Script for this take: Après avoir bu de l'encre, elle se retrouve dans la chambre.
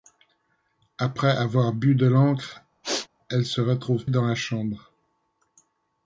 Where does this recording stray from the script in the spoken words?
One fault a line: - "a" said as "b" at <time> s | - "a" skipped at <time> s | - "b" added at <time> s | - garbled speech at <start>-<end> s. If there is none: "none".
none